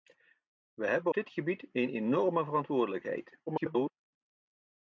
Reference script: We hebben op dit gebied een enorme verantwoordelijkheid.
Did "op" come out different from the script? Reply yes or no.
yes